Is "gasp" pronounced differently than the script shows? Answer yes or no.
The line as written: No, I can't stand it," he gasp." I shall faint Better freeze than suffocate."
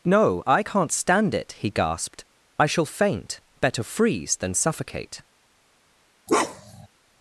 yes